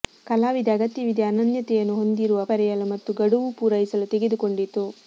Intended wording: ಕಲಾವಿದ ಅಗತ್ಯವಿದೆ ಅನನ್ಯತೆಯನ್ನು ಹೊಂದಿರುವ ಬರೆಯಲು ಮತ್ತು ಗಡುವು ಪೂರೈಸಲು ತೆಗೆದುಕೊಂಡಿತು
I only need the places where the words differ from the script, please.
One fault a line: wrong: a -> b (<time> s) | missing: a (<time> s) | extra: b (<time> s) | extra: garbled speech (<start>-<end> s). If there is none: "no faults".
no faults